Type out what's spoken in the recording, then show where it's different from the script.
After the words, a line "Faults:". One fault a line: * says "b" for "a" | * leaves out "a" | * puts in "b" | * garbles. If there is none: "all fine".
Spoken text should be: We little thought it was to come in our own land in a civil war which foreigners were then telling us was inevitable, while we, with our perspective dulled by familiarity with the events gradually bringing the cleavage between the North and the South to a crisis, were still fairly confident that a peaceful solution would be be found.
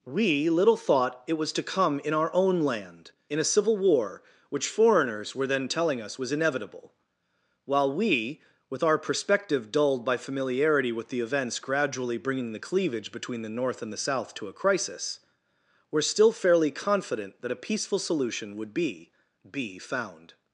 We little thought it was to come in our own land in a civil war which foreigners were then telling us was inevitable, while we, with our perspective dulled by familiarity with the events gradually bringing the cleavage between the North and the South to a crisis, were still fairly confident that a peaceful solution would be be found.
Faults:
all fine